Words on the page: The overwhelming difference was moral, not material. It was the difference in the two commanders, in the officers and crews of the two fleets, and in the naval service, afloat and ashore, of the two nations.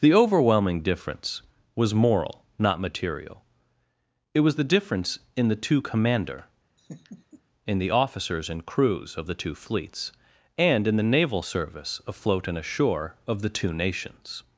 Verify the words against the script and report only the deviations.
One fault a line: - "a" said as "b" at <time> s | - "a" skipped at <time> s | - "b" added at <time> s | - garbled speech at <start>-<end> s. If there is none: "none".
- "commanders" said as "commander" at 5.8 s